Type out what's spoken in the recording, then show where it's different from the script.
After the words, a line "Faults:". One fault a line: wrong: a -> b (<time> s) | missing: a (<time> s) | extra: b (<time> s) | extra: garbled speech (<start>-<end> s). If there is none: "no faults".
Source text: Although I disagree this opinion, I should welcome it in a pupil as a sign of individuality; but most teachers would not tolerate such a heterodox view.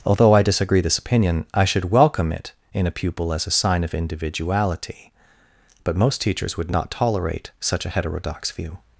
Although I disagree this opinion, I should welcome it in a pupil as a sign of individuality; but most teachers would not tolerate such a heterodox view.
Faults:
no faults